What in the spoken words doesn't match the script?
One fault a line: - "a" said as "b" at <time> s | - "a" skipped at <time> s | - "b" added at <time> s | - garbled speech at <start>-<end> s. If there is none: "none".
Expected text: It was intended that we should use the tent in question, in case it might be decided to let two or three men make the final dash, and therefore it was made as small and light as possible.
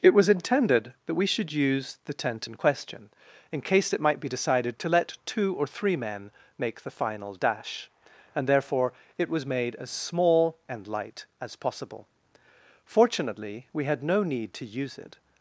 - "Fortunately we had no need to use it" added at 12.8 s